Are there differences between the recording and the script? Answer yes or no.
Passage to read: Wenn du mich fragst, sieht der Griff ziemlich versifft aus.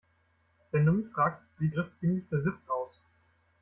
yes